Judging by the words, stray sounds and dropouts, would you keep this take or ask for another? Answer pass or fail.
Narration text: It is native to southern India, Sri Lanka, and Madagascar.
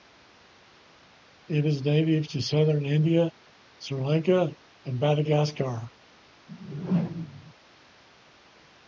fail